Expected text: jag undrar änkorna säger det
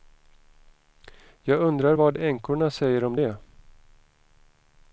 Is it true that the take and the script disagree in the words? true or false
true